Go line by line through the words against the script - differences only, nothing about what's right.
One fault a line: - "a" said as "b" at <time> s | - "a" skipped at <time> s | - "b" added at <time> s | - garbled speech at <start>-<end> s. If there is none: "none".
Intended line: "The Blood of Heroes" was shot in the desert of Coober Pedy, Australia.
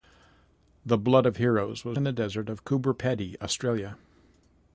- "shot" skipped at 2.0 s